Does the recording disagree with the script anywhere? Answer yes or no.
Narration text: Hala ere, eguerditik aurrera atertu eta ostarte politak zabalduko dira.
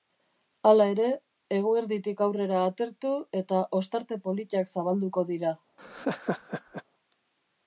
no